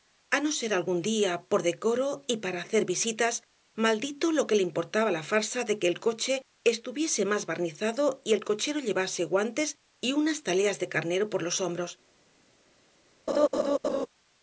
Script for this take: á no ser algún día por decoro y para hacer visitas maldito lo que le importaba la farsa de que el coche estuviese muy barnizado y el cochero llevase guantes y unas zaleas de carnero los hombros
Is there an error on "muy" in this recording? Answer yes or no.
yes